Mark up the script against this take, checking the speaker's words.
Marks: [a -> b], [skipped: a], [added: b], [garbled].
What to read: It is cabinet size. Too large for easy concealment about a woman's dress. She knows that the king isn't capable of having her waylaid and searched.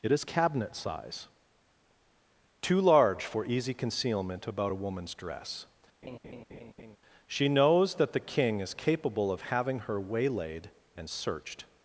It is cabinet size. Too large for easy concealment about a woman's dress. She knows that the king [isn't -> is] capable of having her waylaid and searched.